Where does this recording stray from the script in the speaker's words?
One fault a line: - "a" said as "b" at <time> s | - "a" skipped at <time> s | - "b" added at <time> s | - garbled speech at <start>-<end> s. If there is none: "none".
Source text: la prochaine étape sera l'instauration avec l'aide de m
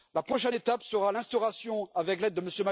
none